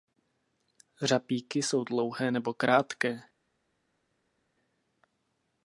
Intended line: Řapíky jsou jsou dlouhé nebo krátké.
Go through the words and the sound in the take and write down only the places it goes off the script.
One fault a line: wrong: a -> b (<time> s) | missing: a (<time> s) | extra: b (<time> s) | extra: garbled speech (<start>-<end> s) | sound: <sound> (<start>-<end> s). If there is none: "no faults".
missing: jsou (1.8 s)